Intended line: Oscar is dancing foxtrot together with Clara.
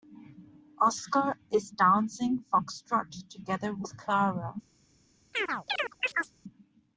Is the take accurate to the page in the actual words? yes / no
yes